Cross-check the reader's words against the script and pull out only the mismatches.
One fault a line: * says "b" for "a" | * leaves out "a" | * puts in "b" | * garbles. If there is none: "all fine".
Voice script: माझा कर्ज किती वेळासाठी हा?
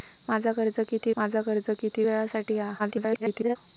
* puts in "माझा कर्ज किती"
* garbles